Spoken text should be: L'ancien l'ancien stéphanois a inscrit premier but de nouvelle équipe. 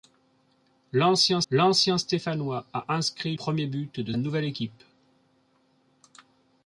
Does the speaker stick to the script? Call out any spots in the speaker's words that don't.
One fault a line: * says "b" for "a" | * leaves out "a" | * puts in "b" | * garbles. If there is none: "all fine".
all fine